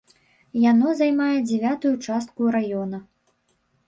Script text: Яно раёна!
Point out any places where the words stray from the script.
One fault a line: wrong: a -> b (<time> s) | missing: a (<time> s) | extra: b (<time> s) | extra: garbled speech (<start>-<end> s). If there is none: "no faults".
extra: займае дзявятую частку (1.0 s)